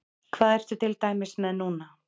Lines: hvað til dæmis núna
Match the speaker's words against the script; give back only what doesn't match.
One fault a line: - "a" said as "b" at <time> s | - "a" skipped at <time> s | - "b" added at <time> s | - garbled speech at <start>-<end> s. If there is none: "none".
- "ertu" added at 0.5 s
- "með" added at 1.5 s